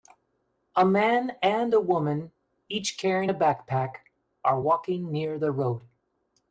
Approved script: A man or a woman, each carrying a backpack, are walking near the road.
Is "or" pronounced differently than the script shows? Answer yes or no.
yes